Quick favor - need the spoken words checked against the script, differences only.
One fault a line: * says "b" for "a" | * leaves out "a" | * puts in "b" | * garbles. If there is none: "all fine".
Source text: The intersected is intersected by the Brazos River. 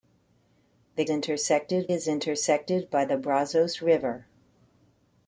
all fine